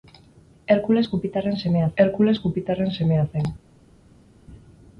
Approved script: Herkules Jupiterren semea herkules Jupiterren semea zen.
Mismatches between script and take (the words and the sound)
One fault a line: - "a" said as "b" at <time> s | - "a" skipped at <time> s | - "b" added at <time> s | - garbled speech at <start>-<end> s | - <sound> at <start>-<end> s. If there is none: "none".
none